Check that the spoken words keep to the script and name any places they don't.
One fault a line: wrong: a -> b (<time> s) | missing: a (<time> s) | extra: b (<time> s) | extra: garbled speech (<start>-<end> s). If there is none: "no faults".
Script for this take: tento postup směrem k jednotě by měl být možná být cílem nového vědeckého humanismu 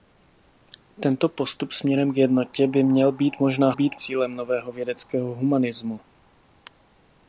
no faults